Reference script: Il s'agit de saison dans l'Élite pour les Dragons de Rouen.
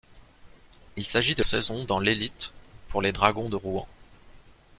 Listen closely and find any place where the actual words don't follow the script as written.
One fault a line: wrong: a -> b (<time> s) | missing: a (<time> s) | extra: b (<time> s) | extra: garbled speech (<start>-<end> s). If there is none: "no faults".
no faults